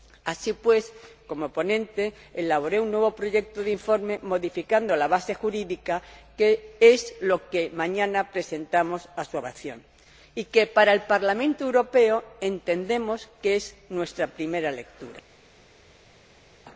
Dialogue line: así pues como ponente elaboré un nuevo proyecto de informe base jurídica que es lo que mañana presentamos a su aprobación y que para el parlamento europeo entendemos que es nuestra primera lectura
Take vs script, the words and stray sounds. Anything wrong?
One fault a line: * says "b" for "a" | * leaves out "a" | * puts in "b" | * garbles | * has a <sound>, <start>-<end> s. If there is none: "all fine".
* puts in "modificando la"